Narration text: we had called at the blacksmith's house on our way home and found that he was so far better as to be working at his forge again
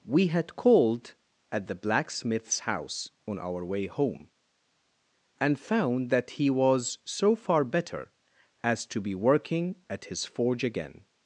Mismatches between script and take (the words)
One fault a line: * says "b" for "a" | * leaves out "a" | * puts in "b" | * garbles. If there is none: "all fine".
all fine